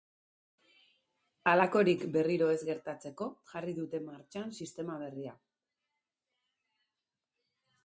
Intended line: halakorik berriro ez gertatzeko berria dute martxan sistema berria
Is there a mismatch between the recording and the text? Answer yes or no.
yes